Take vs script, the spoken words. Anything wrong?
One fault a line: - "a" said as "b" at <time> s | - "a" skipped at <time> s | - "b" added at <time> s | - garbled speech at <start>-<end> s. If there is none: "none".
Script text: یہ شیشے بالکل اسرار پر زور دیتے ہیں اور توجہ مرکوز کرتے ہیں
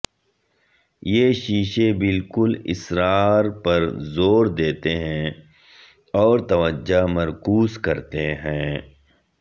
none